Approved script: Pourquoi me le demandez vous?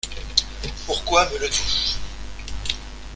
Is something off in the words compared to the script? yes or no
yes